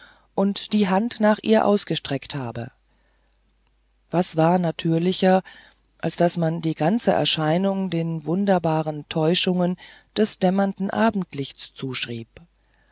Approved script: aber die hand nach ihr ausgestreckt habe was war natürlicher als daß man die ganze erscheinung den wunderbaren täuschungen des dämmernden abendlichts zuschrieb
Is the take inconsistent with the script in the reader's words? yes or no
yes